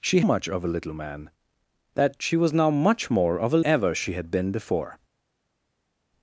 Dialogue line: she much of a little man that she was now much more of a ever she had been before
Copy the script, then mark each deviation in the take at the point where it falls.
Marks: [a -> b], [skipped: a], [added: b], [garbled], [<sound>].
she much of a little man that she was now much more of a ever she had been before